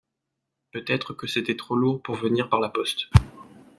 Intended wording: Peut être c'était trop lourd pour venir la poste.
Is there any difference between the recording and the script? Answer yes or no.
yes